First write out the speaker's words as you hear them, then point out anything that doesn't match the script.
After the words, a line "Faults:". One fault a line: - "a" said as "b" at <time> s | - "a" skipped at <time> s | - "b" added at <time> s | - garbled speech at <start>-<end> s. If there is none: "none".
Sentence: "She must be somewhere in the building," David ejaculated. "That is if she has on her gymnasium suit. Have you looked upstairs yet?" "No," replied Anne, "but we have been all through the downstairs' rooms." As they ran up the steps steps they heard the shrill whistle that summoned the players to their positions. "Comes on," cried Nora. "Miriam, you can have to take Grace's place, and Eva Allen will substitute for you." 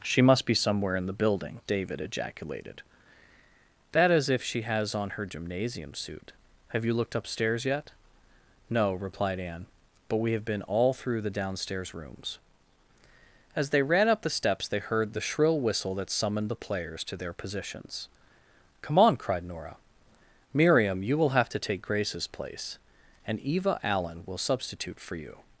"She must be somewhere in the building," David ejaculated. "That is if she has on her gymnasium suit. Have you looked upstairs yet?" "No," replied Anne, "but we have been all through the downstairs' rooms." As they ran up the steps they heard the shrill whistle that summoned the players to their positions. "Come on," cried Nora. "Miriam, you will have to take Grace's place, and Eva Allen will substitute for you."
Faults:
- "steps" skipped at 14.7 s
- "Comes" said as "Come" at 18.8 s
- "can" said as "will" at 21.2 s